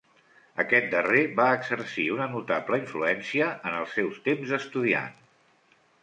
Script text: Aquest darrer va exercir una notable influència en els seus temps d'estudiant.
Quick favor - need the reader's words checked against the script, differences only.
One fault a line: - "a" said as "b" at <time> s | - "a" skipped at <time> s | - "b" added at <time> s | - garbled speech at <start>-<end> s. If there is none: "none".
none